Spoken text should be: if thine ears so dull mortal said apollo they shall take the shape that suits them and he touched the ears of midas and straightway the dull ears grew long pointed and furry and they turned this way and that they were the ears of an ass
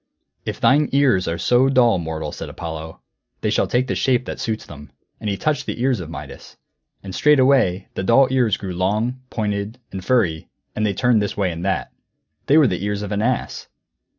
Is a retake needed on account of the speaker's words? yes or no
yes